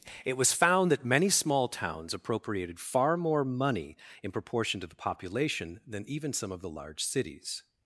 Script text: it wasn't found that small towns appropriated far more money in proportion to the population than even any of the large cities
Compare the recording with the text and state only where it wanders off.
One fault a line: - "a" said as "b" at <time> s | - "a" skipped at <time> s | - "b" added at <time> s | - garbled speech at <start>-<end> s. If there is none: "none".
- "wasn't" said as "was" at 0.3 s
- "many" added at 1.1 s
- "any" said as "some" at 6.3 s